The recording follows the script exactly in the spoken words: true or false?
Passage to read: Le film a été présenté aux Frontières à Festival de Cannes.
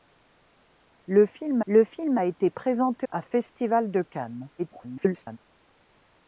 false